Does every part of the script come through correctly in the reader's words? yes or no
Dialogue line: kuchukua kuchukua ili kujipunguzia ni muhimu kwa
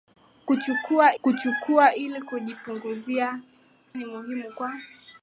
yes